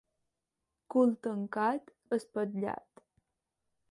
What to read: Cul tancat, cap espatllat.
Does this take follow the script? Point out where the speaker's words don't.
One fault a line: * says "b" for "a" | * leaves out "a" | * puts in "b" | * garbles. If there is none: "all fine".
* leaves out "cap"